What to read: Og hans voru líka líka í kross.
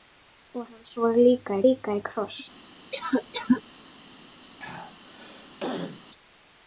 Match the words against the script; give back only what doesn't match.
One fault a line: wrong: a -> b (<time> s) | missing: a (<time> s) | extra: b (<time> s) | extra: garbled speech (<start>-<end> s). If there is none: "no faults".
no faults